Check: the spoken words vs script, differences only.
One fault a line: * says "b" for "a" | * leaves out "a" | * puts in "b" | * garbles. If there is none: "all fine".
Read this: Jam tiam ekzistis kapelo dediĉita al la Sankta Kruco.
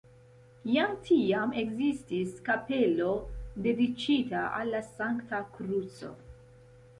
all fine